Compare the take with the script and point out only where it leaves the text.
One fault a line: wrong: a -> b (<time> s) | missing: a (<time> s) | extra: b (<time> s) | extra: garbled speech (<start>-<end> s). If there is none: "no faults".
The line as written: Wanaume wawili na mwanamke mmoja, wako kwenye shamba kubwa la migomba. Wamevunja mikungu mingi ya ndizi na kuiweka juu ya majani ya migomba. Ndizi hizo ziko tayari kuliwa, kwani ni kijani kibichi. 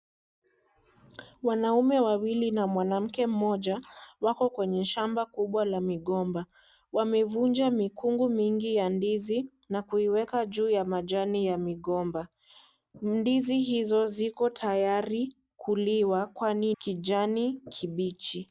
missing: ni (16.7 s)